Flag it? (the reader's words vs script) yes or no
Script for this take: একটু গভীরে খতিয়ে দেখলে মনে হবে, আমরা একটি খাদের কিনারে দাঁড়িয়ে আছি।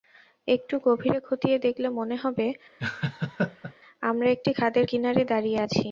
no